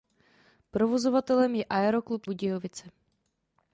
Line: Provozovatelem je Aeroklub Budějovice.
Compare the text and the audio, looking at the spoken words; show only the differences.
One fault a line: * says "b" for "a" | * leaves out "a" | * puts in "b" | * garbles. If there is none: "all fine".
all fine